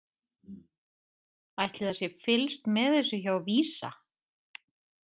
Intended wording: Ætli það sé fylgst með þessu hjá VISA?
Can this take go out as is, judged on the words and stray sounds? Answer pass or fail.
pass